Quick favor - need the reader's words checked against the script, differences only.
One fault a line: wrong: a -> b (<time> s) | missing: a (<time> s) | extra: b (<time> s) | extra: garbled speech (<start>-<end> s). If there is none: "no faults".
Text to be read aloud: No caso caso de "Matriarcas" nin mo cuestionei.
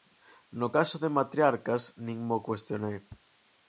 missing: caso (0.9 s)